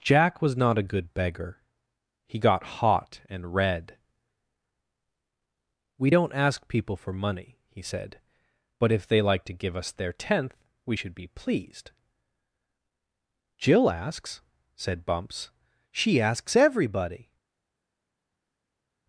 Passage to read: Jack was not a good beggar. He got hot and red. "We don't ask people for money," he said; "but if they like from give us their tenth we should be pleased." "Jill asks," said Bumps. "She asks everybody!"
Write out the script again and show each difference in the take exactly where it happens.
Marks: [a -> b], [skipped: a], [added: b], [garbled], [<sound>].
Jack was not a good beggar. He got hot and red. "We don't ask people for money," he said; "but if they like [from -> to] give us their tenth we should be pleased." "Jill asks," said Bumps. "She asks everybody!"